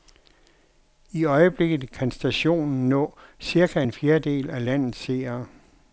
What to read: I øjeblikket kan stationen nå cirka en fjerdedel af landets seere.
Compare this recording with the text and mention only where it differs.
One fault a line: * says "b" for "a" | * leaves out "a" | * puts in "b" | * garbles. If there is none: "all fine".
all fine